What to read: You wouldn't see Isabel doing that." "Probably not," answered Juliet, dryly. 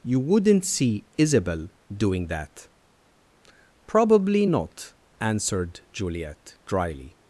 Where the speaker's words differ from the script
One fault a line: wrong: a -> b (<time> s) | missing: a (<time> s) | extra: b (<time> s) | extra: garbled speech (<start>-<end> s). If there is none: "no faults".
no faults